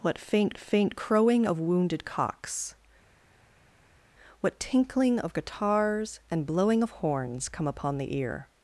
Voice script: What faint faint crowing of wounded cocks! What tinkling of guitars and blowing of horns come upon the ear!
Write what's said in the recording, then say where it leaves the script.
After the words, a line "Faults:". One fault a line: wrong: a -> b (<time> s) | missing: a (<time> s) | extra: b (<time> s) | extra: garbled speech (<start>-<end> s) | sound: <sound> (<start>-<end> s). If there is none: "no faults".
What faint faint crowing of wounded cocks! What tinkling of guitars and blowing of horns come upon the ear!
Faults:
no faults